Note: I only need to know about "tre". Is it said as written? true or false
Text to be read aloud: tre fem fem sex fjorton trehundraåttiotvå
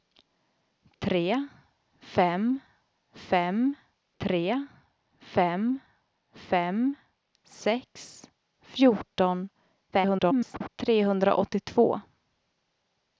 true